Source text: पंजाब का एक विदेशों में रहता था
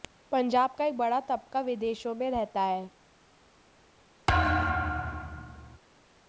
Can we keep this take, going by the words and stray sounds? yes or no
no